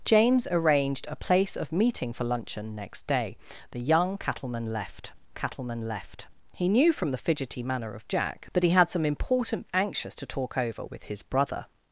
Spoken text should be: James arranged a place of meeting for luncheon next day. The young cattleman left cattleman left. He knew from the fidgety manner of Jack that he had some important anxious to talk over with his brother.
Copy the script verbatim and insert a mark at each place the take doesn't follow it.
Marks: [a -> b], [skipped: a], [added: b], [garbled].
James arranged a place of meeting for luncheon next day. The young cattleman left cattleman left. He knew from the fidgety manner of Jack that he had some important anxious to talk over with his brother.